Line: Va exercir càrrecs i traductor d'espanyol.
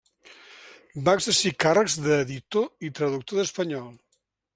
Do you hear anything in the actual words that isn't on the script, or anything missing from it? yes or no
yes